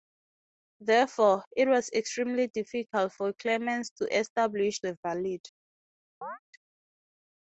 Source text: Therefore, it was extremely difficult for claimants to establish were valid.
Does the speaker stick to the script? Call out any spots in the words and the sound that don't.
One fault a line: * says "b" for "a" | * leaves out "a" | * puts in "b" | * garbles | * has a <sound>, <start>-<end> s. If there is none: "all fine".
* has a chirp, 6.2-6.4 s